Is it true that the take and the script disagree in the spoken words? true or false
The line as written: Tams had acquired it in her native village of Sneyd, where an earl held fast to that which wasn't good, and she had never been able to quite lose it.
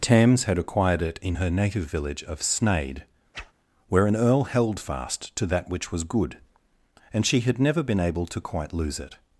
true